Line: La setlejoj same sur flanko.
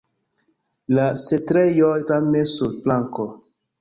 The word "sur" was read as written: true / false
true